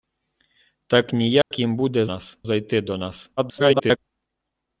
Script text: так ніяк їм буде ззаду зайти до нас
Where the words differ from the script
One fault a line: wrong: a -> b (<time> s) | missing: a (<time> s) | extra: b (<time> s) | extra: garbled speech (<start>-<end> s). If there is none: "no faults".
wrong: ззаду -> нас (2.1 s)
extra: garbled speech (3.4-4.0 s)